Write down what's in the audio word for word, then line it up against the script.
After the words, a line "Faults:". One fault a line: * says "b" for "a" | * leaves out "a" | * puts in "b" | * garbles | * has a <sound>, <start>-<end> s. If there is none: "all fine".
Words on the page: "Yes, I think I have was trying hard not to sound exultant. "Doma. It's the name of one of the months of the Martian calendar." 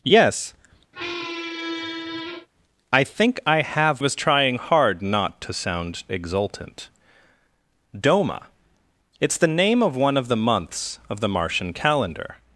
"Yes, I think I have was trying hard not to sound exultant. "Doma. It's the name of one of the months of the Martian calendar."
Faults:
* has a squeak, 0.9-2.5 s